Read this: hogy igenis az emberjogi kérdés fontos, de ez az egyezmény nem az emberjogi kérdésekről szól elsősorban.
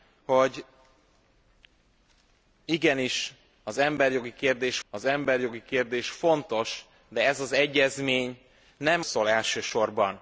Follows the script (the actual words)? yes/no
no